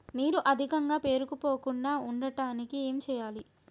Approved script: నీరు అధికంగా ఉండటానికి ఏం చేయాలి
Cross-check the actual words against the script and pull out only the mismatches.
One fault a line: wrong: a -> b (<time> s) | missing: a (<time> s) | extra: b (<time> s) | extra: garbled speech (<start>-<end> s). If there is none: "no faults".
extra: పేరుకుపోకుండా (1.0 s)